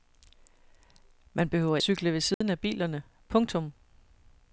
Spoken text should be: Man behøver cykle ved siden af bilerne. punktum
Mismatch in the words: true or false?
false